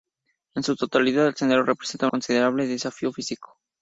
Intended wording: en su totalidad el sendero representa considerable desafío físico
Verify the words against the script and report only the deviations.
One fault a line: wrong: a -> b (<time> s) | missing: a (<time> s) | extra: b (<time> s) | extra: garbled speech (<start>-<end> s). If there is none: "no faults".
no faults